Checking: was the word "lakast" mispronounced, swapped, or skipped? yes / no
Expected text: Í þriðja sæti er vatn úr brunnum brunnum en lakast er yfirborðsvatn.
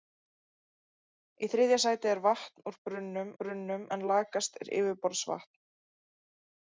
no